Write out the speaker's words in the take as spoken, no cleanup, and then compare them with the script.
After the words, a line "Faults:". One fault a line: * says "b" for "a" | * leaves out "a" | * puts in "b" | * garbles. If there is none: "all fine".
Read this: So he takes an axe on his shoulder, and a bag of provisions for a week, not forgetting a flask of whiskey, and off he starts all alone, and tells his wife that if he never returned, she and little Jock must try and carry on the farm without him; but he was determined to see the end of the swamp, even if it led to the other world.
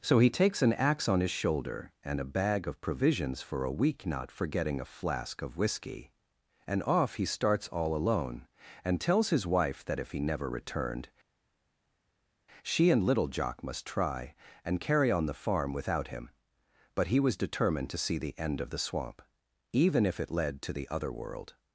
So he takes an axe on his shoulder, and a bag of provisions for a week, not forgetting a flask of whiskey, and off he starts all alone, and tells his wife that if he never returned, she and little Jock must try and carry on the farm without him; but he was determined to see the end of the swamp, even if it led to the other world.
Faults:
all fine